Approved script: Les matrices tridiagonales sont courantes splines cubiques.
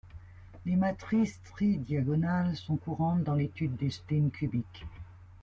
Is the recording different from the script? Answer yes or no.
yes